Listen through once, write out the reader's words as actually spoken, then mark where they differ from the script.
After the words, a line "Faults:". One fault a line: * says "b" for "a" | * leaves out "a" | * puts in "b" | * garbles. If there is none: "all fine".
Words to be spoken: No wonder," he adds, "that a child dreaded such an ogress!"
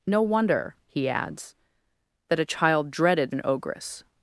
No wonder," he adds, "that a child dreaded an ogress!"
Faults:
* leaves out "such"